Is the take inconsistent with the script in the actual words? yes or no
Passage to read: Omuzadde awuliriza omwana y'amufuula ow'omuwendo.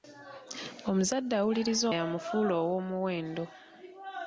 yes